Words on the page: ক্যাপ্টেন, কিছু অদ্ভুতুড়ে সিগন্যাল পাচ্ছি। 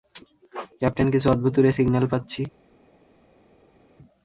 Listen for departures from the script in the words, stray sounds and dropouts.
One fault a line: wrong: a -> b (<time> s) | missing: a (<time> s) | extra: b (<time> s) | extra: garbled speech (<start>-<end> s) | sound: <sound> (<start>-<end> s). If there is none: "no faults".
no faults